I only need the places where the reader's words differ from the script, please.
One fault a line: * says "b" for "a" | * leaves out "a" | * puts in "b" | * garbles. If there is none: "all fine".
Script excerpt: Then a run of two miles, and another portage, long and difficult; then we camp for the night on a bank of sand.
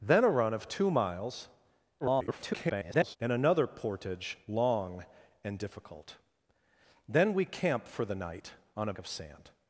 * garbles
* leaves out "bank"